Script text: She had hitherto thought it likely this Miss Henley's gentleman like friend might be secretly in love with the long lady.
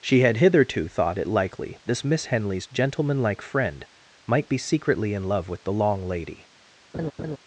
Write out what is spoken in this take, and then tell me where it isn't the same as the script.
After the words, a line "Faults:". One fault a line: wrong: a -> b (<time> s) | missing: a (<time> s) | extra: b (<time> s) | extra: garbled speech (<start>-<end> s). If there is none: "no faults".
She had hitherto thought it likely this Miss Henley's gentleman like friend might be secretly in love with the long lady.
Faults:
no faults